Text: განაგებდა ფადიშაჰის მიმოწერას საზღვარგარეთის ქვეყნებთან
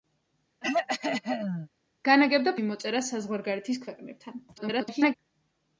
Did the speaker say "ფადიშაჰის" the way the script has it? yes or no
no